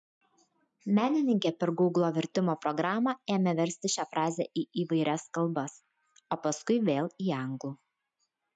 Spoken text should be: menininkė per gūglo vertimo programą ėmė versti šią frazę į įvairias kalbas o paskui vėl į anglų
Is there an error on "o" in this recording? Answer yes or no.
no